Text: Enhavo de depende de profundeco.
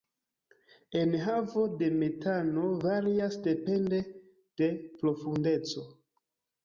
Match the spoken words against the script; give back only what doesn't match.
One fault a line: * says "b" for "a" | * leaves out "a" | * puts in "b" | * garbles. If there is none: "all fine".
* puts in "metano varias"